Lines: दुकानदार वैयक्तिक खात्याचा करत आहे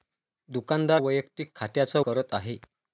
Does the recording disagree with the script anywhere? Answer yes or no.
no